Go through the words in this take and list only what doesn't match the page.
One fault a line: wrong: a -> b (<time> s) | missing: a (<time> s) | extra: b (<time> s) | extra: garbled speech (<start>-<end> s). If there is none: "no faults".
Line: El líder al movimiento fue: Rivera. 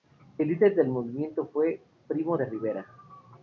wrong: al -> del (0.7 s)
extra: Primo de (2.1 s)